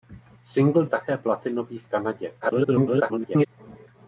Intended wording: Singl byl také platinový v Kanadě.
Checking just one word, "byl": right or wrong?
wrong